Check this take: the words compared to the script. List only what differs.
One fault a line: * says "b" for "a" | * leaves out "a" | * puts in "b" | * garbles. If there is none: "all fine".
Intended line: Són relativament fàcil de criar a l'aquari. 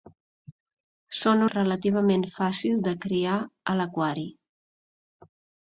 all fine